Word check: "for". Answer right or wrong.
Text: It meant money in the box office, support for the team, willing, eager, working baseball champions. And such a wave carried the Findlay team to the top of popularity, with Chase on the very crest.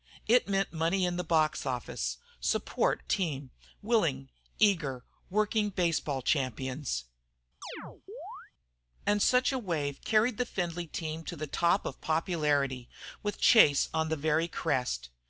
wrong